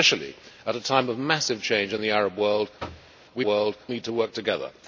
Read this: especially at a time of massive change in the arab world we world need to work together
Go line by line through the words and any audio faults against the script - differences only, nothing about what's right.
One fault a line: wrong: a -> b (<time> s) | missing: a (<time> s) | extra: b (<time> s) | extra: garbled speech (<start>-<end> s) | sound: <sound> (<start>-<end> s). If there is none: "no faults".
sound: thud (2.8-3.1 s)